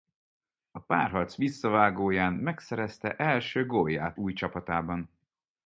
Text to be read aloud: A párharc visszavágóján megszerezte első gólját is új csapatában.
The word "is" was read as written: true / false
false